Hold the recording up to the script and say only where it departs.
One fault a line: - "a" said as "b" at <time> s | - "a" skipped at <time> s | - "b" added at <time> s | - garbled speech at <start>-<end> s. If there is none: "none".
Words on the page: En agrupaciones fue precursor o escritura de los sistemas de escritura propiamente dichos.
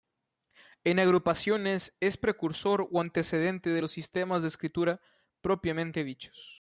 - "fue" said as "es" at 2.0 s
- "escritura" said as "antecedente" at 3.0 s